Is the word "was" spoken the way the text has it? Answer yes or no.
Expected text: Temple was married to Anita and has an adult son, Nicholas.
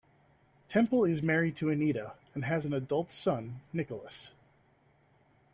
no